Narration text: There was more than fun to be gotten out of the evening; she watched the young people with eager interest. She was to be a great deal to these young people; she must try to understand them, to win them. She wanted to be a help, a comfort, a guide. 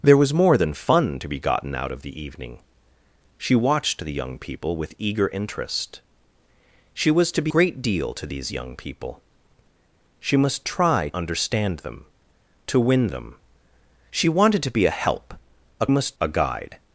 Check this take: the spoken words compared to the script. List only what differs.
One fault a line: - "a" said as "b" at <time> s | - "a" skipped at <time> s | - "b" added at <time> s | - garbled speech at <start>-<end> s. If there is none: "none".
- "a" skipped at 7.5 s
- "to" skipped at 11.1 s
- "comfort" said as "must" at 15.9 s